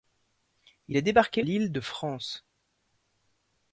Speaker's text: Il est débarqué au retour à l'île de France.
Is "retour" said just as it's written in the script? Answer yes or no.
no